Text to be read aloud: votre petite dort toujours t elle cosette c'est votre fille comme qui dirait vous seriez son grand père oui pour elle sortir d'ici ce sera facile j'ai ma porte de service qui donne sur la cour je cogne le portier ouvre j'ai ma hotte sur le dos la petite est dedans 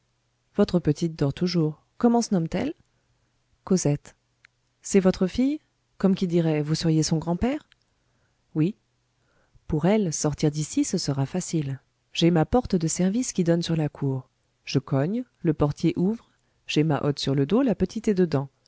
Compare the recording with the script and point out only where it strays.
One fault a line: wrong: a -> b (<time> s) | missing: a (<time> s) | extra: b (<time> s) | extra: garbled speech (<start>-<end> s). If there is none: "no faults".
extra: comment se nomme (2.0 s)